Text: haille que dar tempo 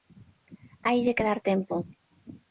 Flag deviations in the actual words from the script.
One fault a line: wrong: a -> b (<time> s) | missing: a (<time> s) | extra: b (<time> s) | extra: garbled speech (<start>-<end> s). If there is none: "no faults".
no faults